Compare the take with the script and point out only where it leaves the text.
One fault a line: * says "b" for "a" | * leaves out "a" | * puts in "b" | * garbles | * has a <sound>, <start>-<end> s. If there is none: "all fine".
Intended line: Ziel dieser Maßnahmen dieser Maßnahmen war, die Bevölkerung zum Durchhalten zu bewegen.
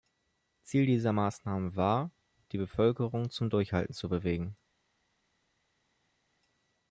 * leaves out "dieser Maßnahmen"